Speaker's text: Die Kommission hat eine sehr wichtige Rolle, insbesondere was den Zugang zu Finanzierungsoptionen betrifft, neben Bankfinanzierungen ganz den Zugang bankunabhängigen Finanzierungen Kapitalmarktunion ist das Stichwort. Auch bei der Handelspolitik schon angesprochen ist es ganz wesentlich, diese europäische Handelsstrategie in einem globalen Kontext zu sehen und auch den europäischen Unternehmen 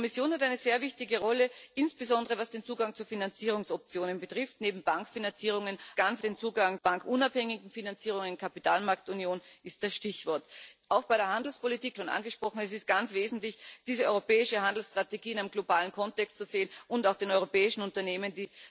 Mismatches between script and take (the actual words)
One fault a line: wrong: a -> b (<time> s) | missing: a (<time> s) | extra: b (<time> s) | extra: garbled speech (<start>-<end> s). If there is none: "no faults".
no faults